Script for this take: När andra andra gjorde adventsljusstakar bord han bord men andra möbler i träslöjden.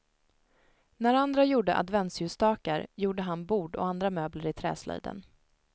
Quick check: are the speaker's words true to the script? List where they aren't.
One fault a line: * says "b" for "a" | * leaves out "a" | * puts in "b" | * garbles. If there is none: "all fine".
* leaves out "andra"
* says "gjorde" for "bord"
* says "och" for "men"